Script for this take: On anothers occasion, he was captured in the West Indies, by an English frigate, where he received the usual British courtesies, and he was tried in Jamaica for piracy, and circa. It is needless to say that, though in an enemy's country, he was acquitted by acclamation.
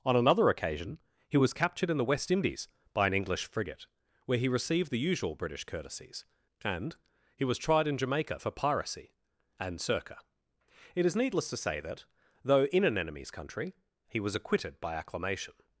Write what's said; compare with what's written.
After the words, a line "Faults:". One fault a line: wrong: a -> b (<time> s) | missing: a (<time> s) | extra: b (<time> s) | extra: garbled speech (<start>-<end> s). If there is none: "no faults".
On another occasion, he was captured in the West Indies, by an English frigate, where he received the usual British courtesies, and he was tried in Jamaica for piracy, and circa. It is needless to say that, though in an enemy's country, he was acquitted by acclamation.
Faults:
wrong: anothers -> another (0.1 s)